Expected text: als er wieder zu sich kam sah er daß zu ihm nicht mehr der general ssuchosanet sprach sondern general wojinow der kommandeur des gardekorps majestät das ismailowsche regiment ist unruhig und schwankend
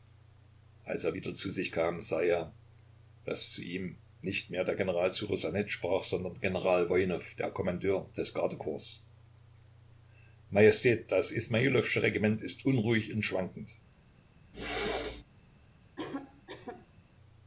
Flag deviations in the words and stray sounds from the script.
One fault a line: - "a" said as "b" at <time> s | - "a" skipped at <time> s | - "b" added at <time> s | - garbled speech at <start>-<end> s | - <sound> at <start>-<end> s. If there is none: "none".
- throat clearing at 14.5-15.2 s
- cough at 16.0-17.0 s